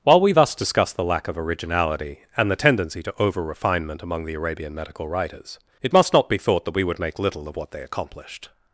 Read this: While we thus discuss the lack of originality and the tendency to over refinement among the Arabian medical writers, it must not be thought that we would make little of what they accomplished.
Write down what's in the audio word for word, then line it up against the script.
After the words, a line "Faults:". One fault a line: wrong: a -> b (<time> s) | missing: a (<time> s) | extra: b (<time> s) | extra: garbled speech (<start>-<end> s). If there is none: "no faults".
While we thus discuss the lack of originality and the tendency to over refinement among the Arabian medical writers, it must not be thought that we would make little of what they accomplished.
Faults:
no faults